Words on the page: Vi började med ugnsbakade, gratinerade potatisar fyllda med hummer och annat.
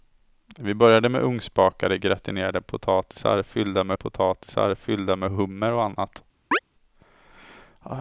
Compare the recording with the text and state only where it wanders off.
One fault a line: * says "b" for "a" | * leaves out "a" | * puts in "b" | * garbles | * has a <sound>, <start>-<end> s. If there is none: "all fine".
* puts in "potatisar fyllda med"
* has a chirp, 6.5-6.6 s